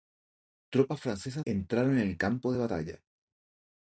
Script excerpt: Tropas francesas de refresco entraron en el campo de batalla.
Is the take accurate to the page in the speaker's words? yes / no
no